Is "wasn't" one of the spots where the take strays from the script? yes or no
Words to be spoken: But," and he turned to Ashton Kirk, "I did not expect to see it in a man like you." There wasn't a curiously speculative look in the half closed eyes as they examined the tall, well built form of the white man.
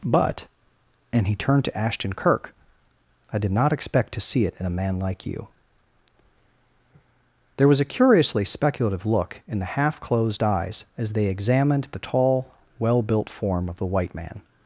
yes